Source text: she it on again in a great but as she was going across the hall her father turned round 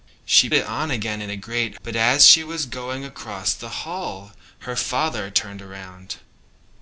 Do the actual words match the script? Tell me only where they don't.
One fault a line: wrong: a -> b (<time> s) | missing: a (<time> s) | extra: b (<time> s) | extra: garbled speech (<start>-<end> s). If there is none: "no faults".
no faults